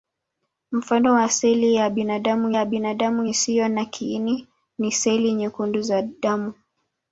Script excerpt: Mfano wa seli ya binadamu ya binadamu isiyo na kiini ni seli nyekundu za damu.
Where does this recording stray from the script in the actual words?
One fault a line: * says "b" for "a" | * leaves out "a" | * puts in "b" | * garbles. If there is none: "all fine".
all fine